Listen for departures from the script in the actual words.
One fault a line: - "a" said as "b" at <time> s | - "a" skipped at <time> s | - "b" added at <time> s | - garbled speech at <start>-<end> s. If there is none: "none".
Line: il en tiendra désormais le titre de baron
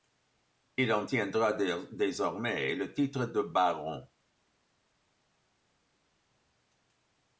none